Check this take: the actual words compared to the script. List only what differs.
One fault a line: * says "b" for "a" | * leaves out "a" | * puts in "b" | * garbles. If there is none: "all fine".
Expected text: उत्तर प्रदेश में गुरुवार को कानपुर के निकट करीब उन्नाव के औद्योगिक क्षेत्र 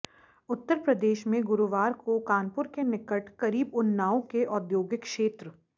all fine